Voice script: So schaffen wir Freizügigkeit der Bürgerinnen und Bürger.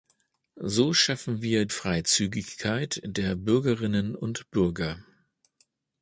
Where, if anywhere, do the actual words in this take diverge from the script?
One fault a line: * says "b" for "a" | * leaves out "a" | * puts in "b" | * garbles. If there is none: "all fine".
all fine